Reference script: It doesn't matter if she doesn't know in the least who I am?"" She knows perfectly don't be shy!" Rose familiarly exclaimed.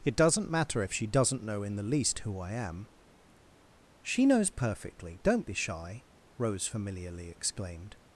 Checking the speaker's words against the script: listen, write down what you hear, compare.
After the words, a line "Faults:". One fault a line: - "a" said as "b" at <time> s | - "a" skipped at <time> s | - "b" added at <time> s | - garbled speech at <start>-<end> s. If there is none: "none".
It doesn't matter if she doesn't know in the least who I am?"" She knows perfectly don't be shy!" Rose familiarly exclaimed.
Faults:
none